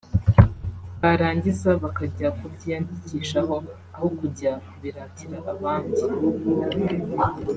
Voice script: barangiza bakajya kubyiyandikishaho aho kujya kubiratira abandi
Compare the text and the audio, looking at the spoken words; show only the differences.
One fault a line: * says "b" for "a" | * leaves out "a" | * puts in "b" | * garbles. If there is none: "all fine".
all fine